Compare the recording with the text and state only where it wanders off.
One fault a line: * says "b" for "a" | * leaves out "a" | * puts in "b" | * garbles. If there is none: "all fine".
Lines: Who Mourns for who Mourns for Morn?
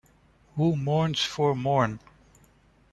* leaves out "who Mourns for"